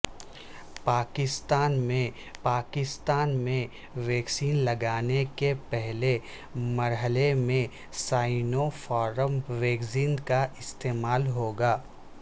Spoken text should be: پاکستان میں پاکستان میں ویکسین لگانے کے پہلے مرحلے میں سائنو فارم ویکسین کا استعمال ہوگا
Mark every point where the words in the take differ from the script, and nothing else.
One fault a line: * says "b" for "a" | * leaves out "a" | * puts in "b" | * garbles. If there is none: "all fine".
all fine